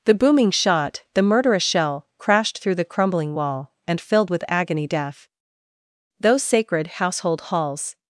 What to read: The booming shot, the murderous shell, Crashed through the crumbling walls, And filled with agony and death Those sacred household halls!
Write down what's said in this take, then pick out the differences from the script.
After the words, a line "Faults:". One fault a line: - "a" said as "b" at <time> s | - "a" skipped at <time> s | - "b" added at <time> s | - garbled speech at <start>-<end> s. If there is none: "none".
The booming shot, the murderous shell, Crashed through the crumbling wall, And filled with agony death Those sacred household halls!
Faults:
- "walls" said as "wall" at 3.4 s
- "and" skipped at 4.9 s